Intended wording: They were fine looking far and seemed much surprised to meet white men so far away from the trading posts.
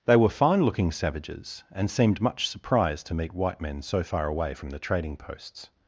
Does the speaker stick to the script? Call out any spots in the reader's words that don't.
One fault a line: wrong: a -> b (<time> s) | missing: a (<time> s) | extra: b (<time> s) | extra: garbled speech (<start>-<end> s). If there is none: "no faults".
wrong: far -> savages (0.9 s)